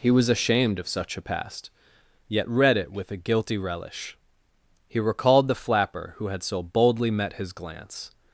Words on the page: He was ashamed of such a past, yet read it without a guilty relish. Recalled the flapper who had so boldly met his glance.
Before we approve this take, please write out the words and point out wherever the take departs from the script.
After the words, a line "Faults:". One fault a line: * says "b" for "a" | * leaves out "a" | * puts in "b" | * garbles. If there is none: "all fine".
He was ashamed of such a past, yet read it with a guilty relish. He recalled the flapper who had so boldly met his glance.
Faults:
* says "with" for "without"
* puts in "He"